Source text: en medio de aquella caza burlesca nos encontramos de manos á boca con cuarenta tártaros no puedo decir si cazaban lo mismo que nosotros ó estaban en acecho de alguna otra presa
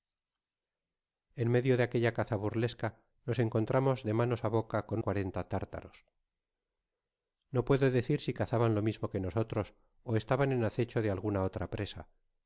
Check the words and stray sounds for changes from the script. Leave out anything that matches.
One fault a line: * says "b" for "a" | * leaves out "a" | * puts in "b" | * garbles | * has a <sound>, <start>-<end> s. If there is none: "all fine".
all fine